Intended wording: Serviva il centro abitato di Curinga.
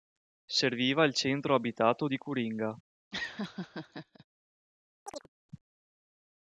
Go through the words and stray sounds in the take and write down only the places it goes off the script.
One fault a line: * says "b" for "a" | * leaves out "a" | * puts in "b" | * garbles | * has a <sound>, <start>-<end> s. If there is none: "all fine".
* has a laugh, 3.1-4.3 s
* has a chirp, 5.1-5.3 s